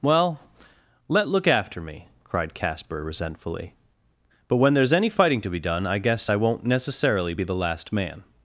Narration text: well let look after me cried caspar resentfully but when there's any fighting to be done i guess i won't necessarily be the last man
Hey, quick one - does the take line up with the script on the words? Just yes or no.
yes